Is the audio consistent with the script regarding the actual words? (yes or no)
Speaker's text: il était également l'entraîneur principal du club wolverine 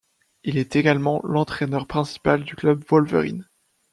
no